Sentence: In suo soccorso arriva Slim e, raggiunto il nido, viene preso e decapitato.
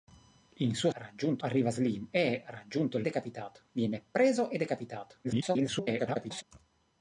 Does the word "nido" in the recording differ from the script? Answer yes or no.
yes